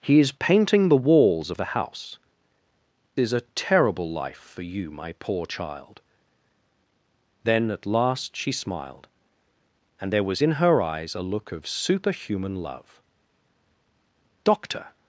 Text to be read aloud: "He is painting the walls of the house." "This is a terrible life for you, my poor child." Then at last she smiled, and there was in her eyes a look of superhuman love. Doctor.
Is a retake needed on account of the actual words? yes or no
yes